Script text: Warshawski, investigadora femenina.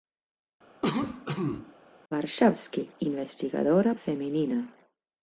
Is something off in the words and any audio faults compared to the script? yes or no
yes